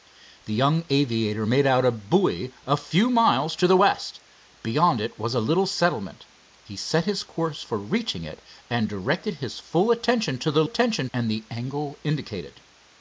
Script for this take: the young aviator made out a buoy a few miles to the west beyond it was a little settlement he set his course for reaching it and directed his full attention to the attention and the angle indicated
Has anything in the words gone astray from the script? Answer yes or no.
no